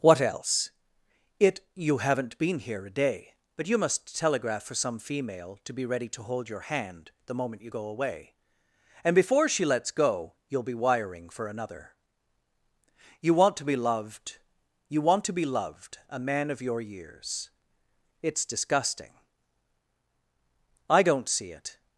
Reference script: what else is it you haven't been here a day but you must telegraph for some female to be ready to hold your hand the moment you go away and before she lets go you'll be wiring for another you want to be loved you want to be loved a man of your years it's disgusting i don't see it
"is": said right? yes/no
no